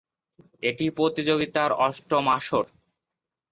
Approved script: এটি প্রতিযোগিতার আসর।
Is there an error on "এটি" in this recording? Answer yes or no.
no